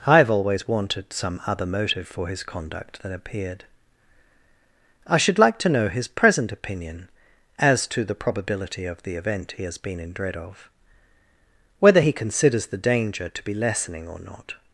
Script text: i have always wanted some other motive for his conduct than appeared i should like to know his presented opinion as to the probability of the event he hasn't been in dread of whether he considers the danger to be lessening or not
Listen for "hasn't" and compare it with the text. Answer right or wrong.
wrong